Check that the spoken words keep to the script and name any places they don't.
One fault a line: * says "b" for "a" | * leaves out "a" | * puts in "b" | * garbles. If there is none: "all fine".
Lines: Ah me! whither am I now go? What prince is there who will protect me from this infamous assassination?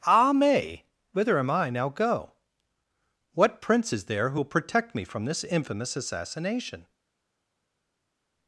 all fine